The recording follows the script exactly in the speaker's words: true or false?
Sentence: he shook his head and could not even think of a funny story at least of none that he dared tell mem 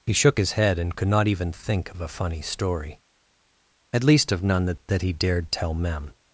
false